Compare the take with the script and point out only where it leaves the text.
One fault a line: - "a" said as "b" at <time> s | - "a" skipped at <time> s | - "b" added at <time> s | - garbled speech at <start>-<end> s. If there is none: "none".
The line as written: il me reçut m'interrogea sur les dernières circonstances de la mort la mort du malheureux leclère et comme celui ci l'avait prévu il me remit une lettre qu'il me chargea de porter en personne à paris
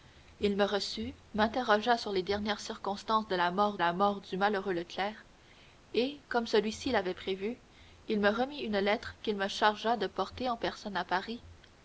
none